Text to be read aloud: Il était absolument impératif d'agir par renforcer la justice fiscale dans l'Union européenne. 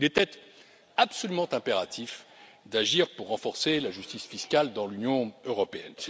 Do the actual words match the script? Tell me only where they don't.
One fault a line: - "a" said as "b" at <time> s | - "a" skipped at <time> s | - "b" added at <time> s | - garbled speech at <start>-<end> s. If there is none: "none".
- "par" said as "pour" at 3.2 s